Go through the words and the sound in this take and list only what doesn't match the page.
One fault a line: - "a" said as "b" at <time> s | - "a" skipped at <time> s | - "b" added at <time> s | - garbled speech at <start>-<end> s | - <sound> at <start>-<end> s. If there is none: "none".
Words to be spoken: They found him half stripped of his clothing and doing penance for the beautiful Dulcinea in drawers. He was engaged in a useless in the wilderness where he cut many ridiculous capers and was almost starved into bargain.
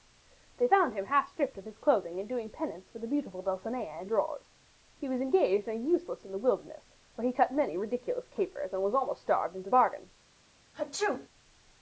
- sneeze at 10.7-11.3 s